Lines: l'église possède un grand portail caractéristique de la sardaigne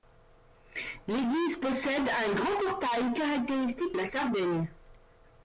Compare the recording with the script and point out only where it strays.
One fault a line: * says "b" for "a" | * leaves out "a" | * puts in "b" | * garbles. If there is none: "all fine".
* leaves out "de"